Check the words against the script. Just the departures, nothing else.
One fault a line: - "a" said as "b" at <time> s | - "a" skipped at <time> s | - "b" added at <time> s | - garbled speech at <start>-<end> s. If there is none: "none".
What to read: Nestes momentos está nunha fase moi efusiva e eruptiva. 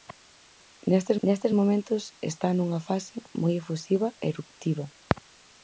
- "nestes" added at 1.2 s